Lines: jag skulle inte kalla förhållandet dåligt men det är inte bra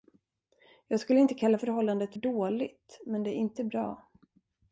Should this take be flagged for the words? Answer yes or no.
no